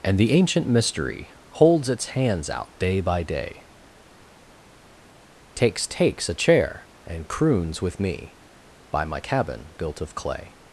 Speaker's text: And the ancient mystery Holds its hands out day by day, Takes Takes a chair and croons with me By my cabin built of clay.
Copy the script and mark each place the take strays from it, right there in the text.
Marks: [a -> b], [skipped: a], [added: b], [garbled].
And the ancient mystery Holds its hands out day by day, Takes Takes a chair and croons with me By my cabin built of clay.